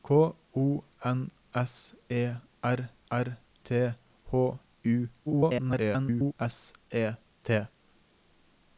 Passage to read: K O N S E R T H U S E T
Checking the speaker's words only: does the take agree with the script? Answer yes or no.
no